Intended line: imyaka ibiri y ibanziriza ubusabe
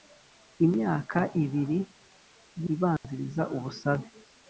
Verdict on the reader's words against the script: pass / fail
pass